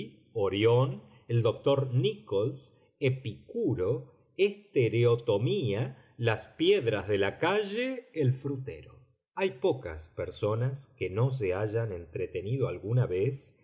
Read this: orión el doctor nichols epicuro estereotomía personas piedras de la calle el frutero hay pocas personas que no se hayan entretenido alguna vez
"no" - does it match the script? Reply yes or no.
yes